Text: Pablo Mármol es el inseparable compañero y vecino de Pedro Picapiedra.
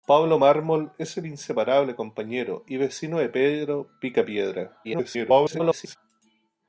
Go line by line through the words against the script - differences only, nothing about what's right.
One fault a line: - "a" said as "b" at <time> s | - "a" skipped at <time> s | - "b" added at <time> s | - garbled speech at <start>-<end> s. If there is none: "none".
- garbled speech at 4.8-6.0 s